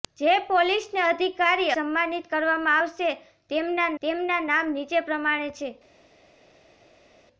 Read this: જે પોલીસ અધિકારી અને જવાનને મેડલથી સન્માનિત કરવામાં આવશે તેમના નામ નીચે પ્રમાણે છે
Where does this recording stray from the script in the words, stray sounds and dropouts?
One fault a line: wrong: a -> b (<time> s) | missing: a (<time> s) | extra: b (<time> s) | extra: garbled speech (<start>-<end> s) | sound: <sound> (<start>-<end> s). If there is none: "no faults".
missing: અને જવાનને મેડલથી (1.8 s)
extra: તેમના (4.0 s)